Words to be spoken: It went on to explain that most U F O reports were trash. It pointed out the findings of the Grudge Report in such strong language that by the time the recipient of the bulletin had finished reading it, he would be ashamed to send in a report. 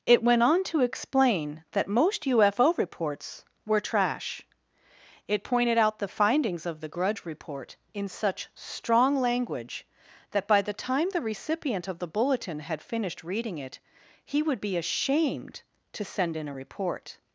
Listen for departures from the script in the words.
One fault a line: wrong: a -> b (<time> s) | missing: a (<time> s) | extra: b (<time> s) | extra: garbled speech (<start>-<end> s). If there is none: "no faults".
no faults